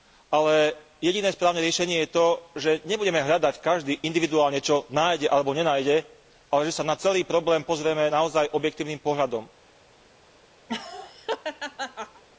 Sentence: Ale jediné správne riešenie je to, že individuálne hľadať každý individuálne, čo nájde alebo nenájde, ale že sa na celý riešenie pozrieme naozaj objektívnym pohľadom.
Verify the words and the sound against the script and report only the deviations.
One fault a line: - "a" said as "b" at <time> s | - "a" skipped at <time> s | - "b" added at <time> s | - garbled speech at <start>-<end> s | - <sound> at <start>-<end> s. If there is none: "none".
- "individuálne" said as "nebudeme" at 2.9 s
- "riešenie" said as "problém" at 7.2 s
- laugh at 10.7-12.2 s